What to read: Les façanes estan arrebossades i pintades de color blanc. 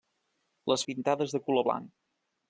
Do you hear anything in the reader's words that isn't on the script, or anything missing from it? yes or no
yes